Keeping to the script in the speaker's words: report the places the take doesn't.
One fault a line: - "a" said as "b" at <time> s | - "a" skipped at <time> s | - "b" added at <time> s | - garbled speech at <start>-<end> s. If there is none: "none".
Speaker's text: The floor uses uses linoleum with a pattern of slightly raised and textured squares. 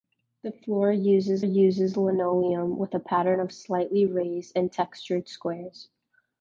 none